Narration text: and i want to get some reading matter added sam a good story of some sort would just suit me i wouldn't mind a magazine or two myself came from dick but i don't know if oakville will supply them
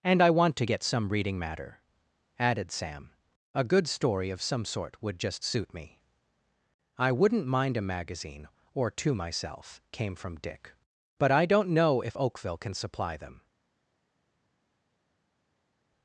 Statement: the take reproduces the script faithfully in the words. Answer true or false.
false